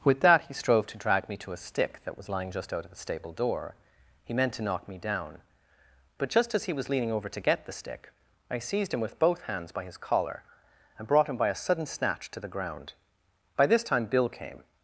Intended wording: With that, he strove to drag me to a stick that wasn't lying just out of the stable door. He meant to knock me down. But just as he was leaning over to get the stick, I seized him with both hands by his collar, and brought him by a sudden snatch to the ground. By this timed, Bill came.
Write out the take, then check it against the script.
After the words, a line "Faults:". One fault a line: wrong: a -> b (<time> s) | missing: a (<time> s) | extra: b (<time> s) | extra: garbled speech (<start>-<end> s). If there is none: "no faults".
With that, he strove to drag me to a stick that was lying just out of the stable door. He meant to knock me down. But just as he was leaning over to get the stick, I seized him with both hands by his collar, and brought him by a sudden snatch to the ground. By this time, Bill came.
Faults:
wrong: wasn't -> was (2.2 s)
wrong: timed -> time (13.8 s)